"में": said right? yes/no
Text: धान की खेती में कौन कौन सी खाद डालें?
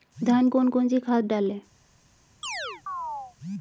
no